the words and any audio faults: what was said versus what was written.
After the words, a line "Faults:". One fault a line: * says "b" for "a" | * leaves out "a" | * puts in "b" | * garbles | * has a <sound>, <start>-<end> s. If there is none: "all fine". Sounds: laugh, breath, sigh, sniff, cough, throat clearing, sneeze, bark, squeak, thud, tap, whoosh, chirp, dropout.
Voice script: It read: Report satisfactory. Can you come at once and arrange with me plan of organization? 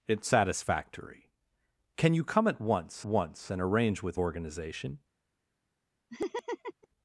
It satisfactory. Can you come at once once and arrange with organization?
Faults:
* leaves out "read Report"
* puts in "once"
* leaves out "me plan of"
* has a laugh, 6.1-6.9 s